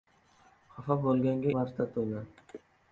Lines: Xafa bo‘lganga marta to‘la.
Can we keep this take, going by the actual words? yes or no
yes